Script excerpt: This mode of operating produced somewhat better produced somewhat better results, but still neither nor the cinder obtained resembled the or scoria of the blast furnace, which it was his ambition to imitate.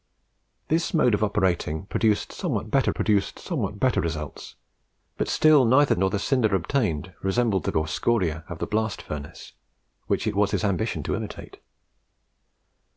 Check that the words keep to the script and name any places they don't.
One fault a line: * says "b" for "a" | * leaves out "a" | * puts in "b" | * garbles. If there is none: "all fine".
all fine